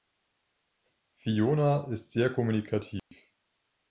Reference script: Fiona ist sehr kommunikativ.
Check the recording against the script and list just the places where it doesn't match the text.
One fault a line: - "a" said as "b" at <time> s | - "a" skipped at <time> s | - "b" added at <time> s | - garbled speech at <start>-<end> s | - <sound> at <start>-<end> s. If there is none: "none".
- dropout at 3.0-3.1 s